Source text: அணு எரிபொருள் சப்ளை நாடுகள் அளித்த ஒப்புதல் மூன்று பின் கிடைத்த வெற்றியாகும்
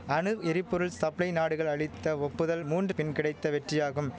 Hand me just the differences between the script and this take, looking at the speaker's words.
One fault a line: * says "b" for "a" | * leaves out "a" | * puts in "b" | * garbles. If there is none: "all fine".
all fine